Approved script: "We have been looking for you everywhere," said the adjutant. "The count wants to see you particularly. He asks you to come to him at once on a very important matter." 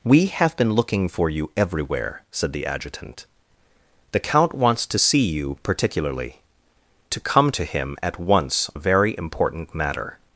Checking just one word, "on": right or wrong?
wrong